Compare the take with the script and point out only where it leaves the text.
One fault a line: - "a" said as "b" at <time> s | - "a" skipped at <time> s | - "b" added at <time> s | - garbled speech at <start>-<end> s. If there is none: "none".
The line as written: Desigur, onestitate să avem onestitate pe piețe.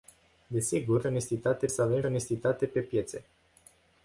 none